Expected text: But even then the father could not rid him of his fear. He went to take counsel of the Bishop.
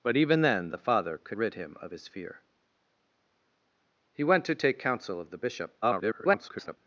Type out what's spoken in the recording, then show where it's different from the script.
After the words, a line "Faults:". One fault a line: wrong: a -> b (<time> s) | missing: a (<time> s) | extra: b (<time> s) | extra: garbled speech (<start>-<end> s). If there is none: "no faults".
But even then the father could rid him of his fear. He went to take counsel of the Bishop. [garbled]
Faults:
missing: not (1.4 s)
extra: garbled speech (5.8-6.8 s)